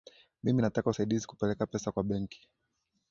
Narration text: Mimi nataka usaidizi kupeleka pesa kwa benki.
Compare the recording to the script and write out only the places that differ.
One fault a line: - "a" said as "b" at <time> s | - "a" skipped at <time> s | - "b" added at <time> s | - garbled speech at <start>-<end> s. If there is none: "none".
none